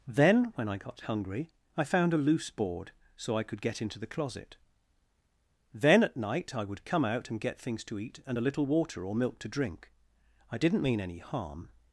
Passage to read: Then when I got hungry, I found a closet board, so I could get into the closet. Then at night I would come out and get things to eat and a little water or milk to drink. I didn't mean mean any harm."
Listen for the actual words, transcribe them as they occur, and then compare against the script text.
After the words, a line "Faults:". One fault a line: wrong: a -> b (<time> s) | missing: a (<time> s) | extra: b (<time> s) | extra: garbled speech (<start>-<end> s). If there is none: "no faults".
Then when I got hungry, I found a loose board, so I could get into the closet. Then at night I would come out and get things to eat and a little water or milk to drink. I didn't mean any harm."
Faults:
wrong: closet -> loose (2.2 s)
missing: mean (11.0 s)